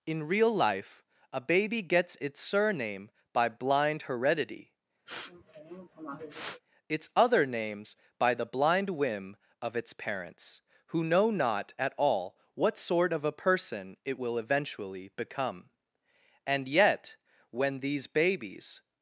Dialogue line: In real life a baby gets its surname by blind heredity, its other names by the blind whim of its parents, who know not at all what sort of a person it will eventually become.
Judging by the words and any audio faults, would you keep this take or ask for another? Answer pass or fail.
fail